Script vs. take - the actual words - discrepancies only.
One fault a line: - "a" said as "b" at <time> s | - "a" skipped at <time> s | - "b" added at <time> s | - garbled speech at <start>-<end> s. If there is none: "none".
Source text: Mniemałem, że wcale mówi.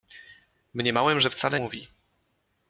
none